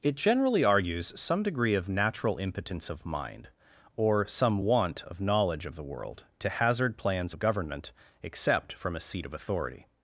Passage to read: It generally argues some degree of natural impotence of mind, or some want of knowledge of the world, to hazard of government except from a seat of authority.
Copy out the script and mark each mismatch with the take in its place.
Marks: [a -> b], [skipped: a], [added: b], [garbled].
It generally argues some degree of natural impotence of mind, or some want of knowledge of the world, to hazard [added: plans] of government except from a seat of authority.